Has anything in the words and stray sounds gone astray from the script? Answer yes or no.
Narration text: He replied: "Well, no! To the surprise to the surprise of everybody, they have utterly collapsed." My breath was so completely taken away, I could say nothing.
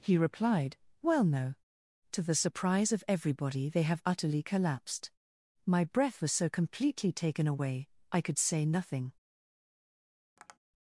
yes